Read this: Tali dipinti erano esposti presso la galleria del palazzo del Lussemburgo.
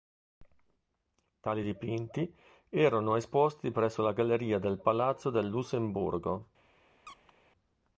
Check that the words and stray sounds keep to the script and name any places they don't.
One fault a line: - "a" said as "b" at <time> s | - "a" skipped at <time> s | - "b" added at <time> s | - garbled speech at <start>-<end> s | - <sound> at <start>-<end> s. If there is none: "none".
- squeak at 7.1-7.3 s